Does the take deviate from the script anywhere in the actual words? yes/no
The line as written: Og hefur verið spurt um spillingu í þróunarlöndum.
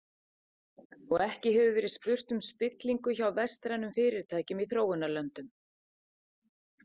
yes